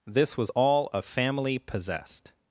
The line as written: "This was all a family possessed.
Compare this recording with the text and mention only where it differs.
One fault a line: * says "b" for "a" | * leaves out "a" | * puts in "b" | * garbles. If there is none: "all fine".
all fine